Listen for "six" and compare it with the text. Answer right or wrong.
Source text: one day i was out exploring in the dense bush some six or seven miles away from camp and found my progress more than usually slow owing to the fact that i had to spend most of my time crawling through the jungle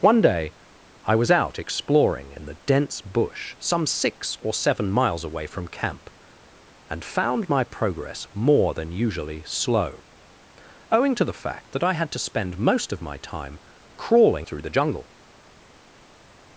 right